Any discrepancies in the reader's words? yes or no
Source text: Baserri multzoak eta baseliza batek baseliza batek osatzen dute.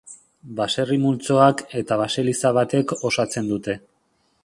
yes